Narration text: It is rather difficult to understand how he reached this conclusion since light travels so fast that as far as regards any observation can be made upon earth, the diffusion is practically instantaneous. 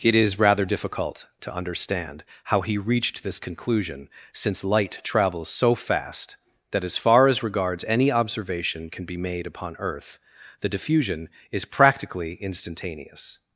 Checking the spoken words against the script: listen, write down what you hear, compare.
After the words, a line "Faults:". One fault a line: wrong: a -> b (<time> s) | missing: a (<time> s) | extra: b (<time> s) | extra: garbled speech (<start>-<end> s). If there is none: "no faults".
It is rather difficult to understand how he reached this conclusion since light travels so fast that as far as regards any observation can be made upon earth, the diffusion is practically instantaneous.
Faults:
no faults